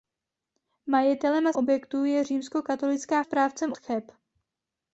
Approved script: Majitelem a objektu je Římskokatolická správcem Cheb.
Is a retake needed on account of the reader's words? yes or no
no